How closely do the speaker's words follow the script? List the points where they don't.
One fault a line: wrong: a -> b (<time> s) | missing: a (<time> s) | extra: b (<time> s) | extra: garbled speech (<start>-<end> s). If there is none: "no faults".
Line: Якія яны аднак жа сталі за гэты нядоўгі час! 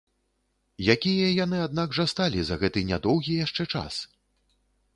extra: яшчэ (3.5 s)